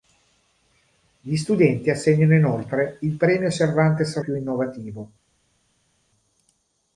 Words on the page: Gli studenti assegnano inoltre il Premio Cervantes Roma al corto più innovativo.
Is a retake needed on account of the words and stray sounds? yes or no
yes